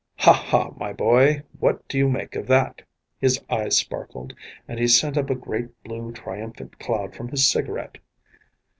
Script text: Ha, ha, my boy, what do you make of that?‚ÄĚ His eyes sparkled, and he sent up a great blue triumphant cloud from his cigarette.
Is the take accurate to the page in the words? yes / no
yes